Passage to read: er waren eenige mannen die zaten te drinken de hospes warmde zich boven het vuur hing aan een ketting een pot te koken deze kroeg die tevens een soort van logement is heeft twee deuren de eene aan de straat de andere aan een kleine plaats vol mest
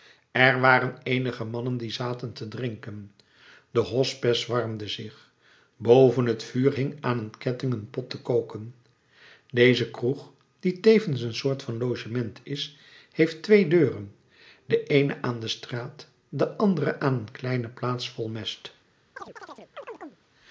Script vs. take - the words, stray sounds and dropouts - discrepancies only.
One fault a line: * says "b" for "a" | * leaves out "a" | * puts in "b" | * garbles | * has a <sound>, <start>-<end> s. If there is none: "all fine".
* has a chirp, 19.2-20.2 s